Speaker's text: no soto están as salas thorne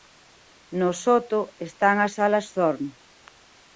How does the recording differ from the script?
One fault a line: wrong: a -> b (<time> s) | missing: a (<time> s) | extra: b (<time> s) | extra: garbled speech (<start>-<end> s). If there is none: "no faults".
no faults